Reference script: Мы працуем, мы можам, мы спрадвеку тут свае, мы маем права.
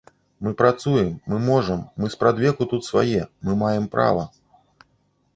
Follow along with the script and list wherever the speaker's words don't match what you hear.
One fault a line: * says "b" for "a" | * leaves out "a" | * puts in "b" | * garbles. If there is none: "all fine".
all fine